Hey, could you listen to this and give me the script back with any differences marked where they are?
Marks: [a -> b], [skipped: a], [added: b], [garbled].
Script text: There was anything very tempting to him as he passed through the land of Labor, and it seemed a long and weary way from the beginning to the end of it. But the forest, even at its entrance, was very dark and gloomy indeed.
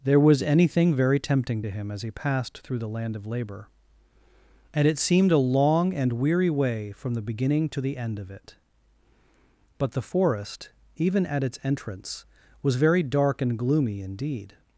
There was anything very tempting to him as he passed through the land of Labor, and it seemed a long and weary way from the beginning to the end of it. But the forest, even at its entrance, was very dark and gloomy indeed.